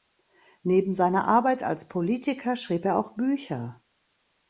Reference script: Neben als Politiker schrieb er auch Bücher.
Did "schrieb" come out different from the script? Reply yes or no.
no